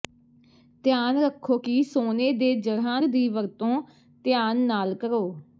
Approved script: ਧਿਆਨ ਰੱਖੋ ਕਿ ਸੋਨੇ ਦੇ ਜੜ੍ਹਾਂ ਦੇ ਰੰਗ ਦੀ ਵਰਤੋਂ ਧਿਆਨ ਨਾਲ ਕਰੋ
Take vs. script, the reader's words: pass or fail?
fail